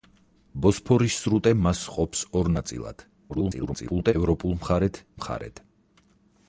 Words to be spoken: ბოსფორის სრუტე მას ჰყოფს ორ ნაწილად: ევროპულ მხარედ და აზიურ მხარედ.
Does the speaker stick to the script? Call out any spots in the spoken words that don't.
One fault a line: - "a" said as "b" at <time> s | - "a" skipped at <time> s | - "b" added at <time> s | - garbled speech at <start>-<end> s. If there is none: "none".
- garbled speech at 3.3-4.1 s
- "და აზიურ" skipped at 5.0 s